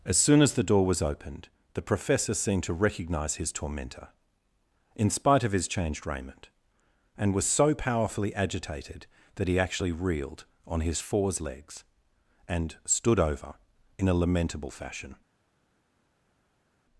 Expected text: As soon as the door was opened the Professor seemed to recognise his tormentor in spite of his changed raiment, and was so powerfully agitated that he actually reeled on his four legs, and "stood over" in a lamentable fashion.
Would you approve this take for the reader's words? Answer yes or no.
no